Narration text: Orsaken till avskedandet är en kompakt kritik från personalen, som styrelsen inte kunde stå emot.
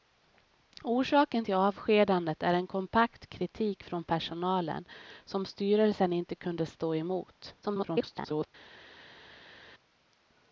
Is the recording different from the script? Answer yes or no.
yes